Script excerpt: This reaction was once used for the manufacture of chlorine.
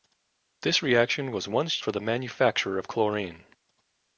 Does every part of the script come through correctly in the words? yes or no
no